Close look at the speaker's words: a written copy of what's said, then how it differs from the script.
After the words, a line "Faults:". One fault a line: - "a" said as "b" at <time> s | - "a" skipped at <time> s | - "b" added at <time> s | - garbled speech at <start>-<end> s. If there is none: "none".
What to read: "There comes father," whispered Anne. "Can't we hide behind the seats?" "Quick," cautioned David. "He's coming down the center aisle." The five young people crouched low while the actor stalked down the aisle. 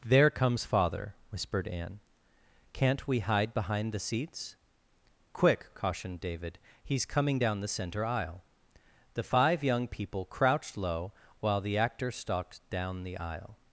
"There comes father," whispered Anne. "Can't we hide behind the seats?" "Quick," cautioned David. "He's coming down the center aisle." The five young people crouched low while the actor stalked down the aisle.
Faults:
none